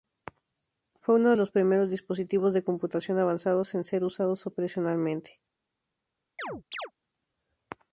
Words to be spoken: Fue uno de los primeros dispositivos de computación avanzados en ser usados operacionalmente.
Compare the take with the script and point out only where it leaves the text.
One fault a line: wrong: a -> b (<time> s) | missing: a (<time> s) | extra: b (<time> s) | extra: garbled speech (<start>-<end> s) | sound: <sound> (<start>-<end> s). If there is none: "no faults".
sound: chirp (6.4-6.9 s)